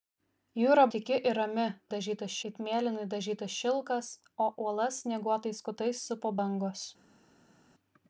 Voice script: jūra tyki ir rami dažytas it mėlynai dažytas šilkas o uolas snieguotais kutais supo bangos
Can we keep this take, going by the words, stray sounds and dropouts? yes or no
yes